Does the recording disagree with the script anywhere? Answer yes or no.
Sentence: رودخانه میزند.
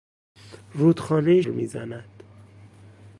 no